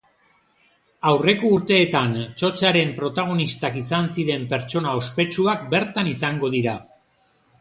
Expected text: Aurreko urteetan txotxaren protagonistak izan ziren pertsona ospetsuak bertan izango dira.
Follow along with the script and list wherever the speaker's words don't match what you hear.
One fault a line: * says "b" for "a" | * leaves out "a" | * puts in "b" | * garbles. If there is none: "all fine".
all fine